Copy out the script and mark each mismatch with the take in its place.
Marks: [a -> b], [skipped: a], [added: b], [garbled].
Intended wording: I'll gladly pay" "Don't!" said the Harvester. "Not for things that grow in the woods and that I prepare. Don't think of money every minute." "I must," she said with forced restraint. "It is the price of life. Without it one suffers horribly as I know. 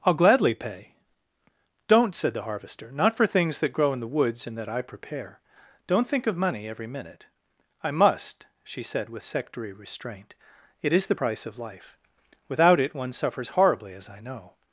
I'll gladly pay" "Don't!" said the Harvester. "Not for things that grow in the woods and that I prepare. Don't think of money every minute." "I must," she said with [forced -> sectary] restraint. "It is the price of life. Without it one suffers horribly as I know.